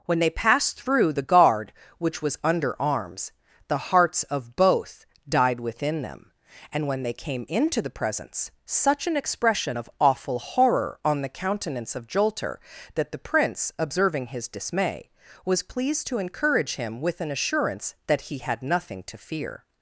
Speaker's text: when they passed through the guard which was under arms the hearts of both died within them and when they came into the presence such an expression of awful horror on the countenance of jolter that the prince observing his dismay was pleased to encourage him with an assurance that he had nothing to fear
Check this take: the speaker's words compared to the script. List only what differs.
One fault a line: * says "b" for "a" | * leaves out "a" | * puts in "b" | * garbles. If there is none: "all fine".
all fine